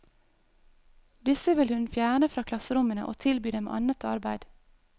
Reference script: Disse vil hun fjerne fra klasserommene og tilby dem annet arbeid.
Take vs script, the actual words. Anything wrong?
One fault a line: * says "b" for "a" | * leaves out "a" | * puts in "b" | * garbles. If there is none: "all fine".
all fine